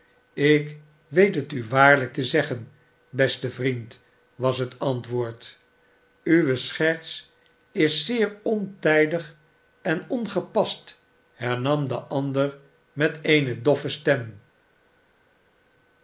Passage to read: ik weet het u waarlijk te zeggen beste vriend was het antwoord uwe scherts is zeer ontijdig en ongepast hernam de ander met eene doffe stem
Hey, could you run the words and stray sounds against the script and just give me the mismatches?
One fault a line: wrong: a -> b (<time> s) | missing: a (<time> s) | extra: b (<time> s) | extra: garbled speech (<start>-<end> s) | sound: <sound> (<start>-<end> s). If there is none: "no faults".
no faults